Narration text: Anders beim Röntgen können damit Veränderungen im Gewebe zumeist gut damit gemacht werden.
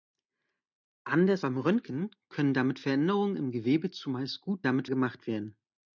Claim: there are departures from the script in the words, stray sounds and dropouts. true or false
false